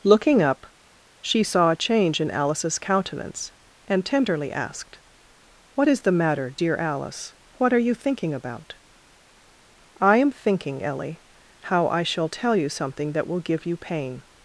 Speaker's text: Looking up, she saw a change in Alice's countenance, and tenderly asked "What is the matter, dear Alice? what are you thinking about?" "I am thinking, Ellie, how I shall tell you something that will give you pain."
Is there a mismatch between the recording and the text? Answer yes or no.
no